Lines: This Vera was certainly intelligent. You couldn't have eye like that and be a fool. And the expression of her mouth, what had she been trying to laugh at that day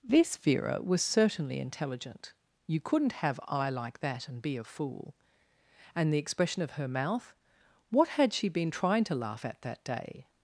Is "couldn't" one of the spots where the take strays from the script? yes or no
no